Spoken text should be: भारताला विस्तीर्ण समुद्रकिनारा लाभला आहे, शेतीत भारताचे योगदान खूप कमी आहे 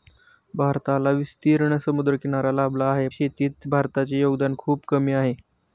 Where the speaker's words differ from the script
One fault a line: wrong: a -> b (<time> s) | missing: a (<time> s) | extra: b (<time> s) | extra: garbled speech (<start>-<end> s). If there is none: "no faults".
no faults